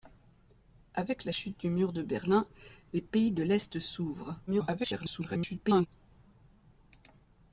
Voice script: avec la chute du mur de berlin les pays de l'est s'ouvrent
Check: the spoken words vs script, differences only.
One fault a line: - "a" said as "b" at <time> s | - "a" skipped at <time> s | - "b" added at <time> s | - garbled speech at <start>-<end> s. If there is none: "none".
- garbled speech at 4.5-5.9 s